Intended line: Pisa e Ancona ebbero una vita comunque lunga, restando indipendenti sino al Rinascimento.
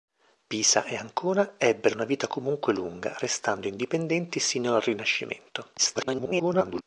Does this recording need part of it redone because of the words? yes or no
yes